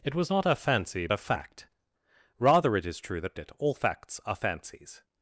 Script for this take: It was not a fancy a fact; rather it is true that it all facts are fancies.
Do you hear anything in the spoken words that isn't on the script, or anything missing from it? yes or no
no